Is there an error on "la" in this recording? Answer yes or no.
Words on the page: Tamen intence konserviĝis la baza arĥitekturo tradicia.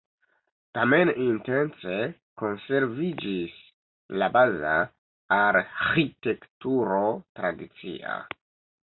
no